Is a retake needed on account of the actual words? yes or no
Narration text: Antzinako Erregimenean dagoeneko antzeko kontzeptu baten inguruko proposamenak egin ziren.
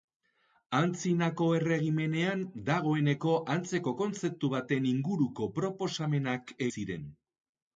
yes